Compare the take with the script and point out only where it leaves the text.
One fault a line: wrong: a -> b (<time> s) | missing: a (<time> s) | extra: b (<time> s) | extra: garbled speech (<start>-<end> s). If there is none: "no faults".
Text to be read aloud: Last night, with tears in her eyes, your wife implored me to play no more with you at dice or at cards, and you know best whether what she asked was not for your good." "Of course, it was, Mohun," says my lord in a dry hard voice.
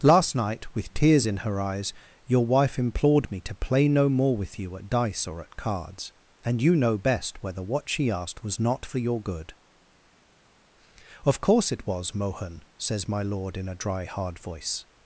no faults